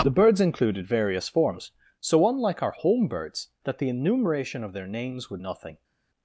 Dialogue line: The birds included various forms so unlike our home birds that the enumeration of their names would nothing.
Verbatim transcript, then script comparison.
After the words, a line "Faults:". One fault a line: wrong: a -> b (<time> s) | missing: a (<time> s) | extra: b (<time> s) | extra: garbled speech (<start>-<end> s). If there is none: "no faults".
The birds included various forms so unlike our home birds that the enumeration of their names would nothing.
Faults:
no faults